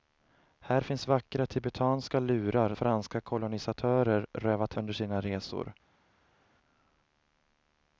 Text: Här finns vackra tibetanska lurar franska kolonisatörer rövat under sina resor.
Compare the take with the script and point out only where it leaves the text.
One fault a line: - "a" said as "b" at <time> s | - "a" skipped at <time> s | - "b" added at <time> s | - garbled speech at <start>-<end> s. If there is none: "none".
none